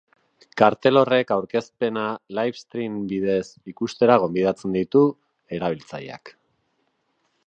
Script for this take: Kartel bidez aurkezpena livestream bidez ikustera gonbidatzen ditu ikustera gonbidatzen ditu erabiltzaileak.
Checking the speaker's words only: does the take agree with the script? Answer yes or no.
no